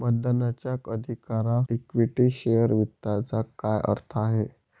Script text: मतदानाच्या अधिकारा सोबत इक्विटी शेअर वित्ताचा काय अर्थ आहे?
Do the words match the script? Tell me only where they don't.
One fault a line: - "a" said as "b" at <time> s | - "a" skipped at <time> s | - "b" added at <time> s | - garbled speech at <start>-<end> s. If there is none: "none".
- "सोबत" skipped at 1.6 s